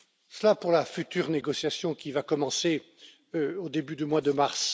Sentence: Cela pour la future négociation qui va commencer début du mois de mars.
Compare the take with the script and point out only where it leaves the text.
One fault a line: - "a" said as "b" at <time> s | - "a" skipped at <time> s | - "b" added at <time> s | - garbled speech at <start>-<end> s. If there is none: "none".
- "au" added at 3.3 s